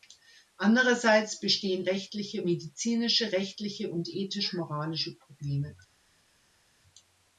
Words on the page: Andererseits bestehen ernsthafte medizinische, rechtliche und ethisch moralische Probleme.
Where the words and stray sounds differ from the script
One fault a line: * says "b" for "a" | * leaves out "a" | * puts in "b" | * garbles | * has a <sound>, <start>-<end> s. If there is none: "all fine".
* says "rechtliche" for "ernsthafte"